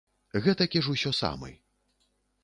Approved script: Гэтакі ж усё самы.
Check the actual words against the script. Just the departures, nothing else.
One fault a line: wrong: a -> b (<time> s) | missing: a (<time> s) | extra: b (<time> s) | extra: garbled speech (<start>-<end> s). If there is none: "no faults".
no faults